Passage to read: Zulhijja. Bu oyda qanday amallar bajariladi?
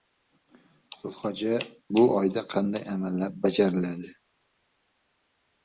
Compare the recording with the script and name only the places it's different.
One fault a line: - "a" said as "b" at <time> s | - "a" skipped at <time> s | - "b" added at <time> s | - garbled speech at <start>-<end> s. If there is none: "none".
none